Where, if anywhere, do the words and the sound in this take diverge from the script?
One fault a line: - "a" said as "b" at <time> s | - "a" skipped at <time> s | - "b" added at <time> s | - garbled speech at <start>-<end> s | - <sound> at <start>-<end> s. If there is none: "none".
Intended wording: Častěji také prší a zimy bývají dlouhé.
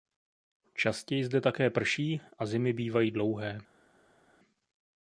- "zde" added at 1.2 s